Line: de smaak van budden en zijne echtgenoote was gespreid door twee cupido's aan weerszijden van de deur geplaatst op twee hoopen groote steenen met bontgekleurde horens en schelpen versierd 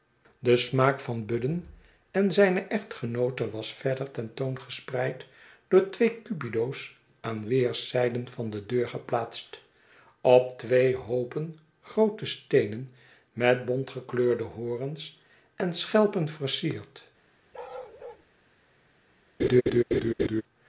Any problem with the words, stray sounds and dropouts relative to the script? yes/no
yes